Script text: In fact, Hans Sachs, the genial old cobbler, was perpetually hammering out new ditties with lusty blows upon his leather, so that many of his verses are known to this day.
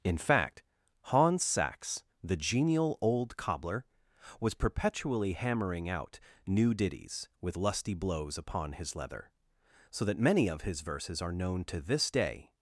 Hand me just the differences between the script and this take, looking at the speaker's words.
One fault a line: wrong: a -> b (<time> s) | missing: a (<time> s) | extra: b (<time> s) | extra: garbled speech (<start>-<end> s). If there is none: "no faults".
no faults